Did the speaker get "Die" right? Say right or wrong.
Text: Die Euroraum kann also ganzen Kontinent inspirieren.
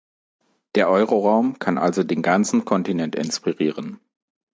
wrong